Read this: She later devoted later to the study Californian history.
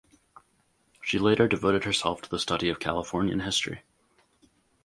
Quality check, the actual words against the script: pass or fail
fail